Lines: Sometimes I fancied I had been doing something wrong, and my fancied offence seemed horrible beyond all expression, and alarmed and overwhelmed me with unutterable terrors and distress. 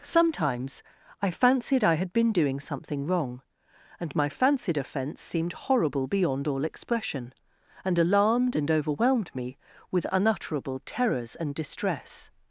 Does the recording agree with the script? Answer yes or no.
yes